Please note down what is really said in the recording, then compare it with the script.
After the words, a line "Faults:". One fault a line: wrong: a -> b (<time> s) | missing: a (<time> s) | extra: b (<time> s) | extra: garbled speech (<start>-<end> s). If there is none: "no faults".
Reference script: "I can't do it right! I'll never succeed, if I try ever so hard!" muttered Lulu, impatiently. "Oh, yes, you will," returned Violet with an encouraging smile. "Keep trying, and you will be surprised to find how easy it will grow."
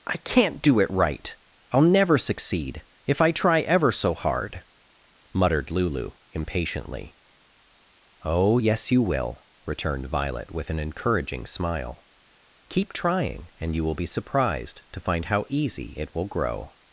"I can't do it right! I'll never succeed, if I try ever so hard!" muttered Lulu, impatiently. "Oh, yes, you will," returned Violet with an encouraging smile. "Keep trying, and you will be surprised to find how easy it will grow."
Faults:
no faults